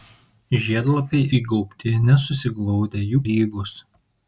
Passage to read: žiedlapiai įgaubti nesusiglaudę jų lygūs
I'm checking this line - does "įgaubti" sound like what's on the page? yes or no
yes